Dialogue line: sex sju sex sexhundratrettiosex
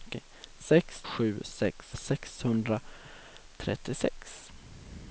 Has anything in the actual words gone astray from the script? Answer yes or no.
no